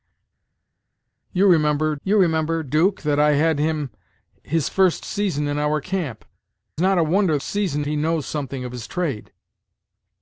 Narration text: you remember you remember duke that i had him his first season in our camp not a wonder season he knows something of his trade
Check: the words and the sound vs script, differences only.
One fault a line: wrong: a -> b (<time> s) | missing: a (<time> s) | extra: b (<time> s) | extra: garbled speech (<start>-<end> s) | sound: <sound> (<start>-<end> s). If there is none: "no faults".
no faults